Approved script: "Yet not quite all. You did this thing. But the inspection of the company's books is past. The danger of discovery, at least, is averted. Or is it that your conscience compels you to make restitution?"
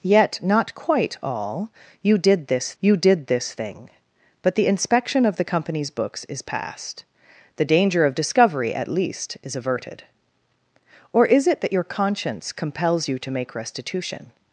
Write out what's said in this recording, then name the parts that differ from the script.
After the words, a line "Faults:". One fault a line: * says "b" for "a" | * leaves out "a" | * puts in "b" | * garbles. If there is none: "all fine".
"Yet not quite all. You did this you did this thing. But the inspection of the company's books is past. The danger of discovery, at least, is averted. Or is it that your conscience compels you to make restitution?"
Faults:
* puts in "you did this"